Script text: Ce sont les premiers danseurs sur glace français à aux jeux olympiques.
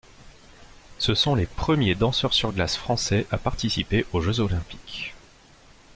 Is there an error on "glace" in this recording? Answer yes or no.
no